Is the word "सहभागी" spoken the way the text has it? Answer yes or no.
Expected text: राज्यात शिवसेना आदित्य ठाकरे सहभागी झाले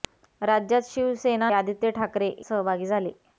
yes